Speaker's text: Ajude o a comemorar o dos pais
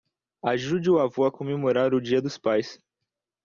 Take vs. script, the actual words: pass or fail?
fail